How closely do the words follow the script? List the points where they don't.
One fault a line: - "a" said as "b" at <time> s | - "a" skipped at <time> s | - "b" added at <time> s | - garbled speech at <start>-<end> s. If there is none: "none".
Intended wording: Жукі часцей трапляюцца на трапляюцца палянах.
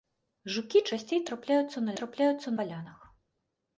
none